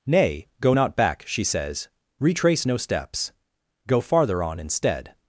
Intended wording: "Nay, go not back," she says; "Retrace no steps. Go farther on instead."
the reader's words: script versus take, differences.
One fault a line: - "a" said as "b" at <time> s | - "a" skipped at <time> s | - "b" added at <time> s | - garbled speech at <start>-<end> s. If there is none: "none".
none